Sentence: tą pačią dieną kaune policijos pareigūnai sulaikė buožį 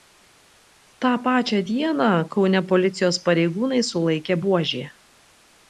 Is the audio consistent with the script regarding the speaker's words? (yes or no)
yes